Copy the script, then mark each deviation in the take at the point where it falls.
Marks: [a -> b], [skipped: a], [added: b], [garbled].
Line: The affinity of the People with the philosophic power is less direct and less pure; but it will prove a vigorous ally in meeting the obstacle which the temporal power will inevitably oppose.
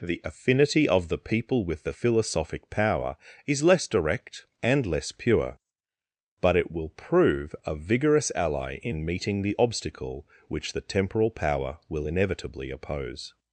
The affinity of the People with the philosophic power is less direct and less pure; but it will prove a vigorous ally in meeting the obstacle which the temporal power will inevitably oppose.